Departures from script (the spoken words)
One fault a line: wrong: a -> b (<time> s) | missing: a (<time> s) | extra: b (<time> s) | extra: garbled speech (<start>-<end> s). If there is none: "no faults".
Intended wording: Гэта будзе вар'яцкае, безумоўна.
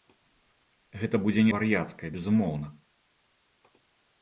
no faults